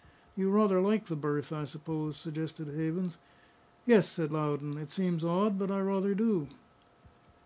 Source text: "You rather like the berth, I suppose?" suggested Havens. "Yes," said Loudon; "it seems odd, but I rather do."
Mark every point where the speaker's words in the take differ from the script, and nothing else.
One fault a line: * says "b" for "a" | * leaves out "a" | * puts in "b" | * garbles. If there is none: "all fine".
all fine